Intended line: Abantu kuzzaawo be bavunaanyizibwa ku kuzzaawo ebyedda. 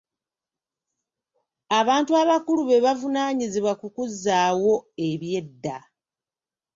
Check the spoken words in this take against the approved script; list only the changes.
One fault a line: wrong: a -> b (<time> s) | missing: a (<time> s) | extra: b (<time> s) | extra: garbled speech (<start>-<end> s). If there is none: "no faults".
wrong: kuzzaawo -> abakulu (2.2 s)